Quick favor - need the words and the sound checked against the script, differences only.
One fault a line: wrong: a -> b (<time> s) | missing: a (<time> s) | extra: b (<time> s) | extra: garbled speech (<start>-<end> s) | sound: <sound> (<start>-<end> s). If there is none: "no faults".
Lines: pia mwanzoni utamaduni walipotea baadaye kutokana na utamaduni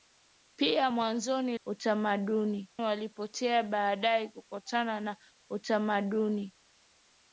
no faults